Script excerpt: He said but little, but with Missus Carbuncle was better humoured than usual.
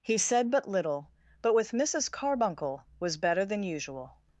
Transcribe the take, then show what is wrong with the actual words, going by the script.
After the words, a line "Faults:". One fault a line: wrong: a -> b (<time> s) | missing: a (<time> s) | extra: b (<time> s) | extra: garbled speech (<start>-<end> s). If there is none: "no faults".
He said but little, but with Missus Carbuncle was better than usual.
Faults:
missing: humoured (3.5 s)